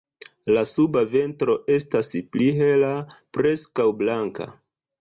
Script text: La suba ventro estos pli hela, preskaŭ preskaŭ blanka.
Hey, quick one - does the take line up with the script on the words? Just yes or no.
no